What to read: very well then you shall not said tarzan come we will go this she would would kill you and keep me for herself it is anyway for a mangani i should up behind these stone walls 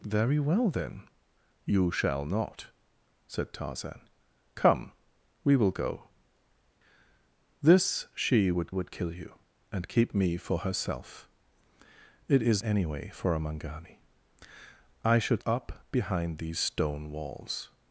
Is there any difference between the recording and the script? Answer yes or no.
no